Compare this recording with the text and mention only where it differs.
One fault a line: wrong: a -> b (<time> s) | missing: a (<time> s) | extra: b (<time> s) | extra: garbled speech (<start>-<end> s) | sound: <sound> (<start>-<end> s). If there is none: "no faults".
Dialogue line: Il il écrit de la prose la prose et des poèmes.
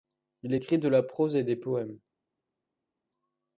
missing: il (0.6 s)
missing: la prose (1.3 s)